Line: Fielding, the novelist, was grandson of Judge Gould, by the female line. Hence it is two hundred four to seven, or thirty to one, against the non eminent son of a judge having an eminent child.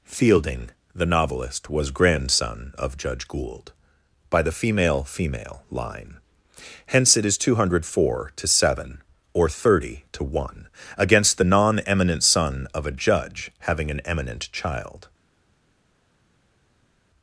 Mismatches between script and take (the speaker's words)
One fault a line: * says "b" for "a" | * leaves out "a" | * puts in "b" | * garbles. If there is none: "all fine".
* puts in "female"